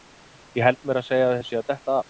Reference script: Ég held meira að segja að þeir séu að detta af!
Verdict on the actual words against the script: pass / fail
pass